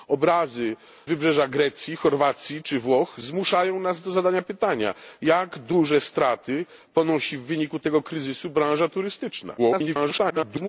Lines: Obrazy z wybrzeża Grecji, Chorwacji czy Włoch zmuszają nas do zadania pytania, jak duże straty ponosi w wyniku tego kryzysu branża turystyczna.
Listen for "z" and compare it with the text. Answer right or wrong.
wrong